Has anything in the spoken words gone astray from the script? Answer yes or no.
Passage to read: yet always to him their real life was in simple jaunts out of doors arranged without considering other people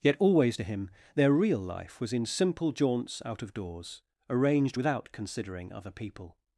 no